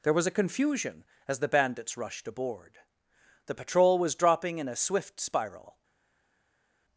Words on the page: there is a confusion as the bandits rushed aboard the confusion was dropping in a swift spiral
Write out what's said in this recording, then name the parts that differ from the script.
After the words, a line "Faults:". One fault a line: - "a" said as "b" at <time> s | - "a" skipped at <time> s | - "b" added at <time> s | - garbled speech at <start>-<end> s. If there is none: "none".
there was a confusion as the bandits rushed aboard the patrol was dropping in a swift spiral
Faults:
- "is" said as "was" at 0.1 s
- "confusion" said as "patrol" at 3.5 s